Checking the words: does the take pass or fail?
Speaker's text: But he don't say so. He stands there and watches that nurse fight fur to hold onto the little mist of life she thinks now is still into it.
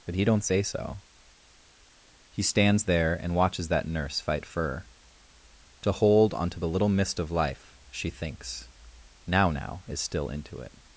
fail